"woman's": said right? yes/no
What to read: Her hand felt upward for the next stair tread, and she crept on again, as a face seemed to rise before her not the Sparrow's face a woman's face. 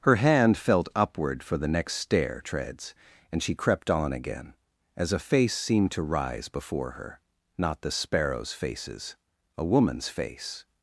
yes